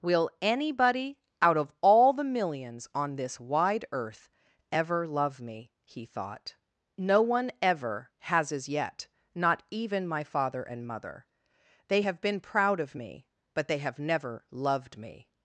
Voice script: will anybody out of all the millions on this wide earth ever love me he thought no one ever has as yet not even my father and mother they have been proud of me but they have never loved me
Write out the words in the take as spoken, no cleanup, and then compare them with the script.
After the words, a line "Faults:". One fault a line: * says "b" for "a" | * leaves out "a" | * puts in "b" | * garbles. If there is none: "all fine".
will anybody out of all the millions on this wide earth ever love me he thought no one ever has as yet not even my father and mother they have been proud of me but they have never loved me
Faults:
all fine